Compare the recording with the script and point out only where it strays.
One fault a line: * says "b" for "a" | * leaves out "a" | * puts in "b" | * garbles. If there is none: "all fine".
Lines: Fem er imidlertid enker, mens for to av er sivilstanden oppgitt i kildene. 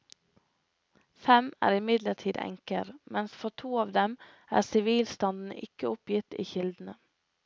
* puts in "dem"
* puts in "ikke"